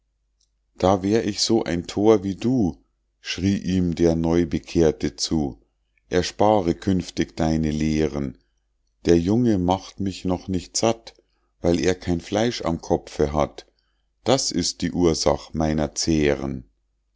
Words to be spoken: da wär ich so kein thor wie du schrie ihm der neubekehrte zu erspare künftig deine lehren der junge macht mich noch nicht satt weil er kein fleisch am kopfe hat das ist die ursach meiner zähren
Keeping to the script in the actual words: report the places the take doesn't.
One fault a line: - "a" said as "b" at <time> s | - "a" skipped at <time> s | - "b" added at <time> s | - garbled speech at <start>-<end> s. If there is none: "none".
- "kein" said as "ein" at 1.6 s